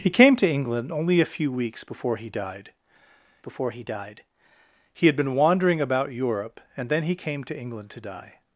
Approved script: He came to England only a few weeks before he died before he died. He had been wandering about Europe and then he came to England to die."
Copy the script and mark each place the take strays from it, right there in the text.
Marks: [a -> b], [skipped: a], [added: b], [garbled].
He came to England only a few weeks before he died before he died. He had been wandering about Europe and then he came to England to die."